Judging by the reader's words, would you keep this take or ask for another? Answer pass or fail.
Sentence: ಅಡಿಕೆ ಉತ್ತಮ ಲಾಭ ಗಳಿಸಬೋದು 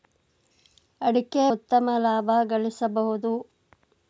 pass